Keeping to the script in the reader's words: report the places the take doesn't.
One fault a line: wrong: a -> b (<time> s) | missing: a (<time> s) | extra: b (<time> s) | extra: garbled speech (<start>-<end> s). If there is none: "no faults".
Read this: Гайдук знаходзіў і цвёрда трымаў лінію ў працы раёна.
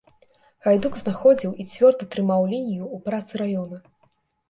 no faults